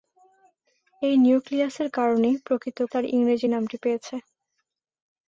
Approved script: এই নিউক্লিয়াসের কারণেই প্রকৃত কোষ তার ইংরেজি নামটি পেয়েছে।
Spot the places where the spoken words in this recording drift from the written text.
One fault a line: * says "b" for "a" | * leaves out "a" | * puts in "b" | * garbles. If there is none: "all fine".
* leaves out "কোষ"